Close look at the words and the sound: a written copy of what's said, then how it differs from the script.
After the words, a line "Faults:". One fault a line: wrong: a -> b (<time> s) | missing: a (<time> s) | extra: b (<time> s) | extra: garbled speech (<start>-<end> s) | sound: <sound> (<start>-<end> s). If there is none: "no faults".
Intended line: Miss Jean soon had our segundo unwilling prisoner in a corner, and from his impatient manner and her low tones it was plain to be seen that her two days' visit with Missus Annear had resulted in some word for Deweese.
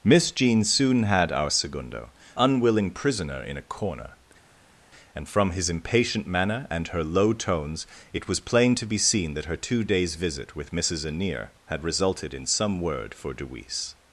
Miss Jean soon had our segundo unwilling prisoner in a corner, and from his impatient manner and her low tones it was plain to be seen that her two days' visit with Missus Annear had resulted in some word for Deweese.
Faults:
no faults